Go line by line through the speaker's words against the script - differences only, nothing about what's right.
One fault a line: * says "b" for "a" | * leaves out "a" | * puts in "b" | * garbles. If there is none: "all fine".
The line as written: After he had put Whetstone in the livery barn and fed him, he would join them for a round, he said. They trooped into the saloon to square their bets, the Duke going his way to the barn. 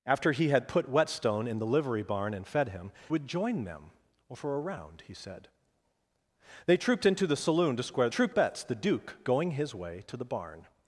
* leaves out "he"
* says "trooped" for "their"